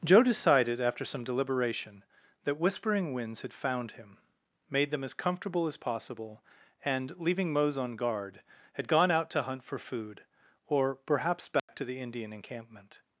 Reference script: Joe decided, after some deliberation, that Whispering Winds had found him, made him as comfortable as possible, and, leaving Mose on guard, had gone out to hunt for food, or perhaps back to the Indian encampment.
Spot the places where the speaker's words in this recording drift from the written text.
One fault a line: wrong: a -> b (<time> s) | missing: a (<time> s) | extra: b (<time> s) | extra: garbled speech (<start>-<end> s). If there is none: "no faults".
wrong: him -> them (4.9 s)